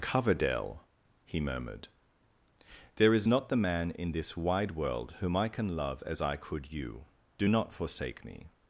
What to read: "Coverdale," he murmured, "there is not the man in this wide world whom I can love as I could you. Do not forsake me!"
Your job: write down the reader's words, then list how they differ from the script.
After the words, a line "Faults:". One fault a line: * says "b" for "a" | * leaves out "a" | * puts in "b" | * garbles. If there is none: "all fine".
"Coverdale," he murmured, "there is not the man in this wide world whom I can love as I could you. Do not forsake me!"
Faults:
all fine